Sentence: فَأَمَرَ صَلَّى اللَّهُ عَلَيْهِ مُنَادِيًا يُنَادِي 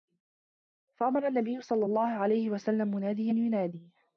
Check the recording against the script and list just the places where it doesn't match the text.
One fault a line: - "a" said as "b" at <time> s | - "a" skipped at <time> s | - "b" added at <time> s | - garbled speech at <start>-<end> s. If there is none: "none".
- "النَّبِيُّ" added at 1.3 s
- "وَسَلَّمَ" added at 2.5 s